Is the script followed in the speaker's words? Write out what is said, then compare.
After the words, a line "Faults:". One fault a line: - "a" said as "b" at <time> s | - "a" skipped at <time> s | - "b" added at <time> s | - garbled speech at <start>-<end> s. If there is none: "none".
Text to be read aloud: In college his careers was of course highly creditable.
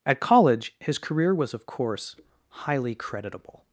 At college his career was of course highly creditable.
Faults:
- "In" said as "At" at 0.1 s
- "careers" said as "career" at 1.0 s